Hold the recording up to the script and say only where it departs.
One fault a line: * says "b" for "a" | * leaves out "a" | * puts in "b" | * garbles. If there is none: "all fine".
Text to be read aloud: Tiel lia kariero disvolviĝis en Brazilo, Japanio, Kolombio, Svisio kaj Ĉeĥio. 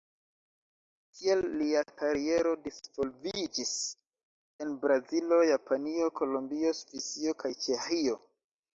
all fine